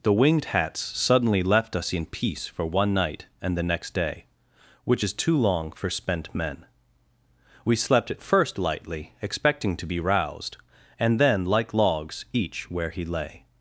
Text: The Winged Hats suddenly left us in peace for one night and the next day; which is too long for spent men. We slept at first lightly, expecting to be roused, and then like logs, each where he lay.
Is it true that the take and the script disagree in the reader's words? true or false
false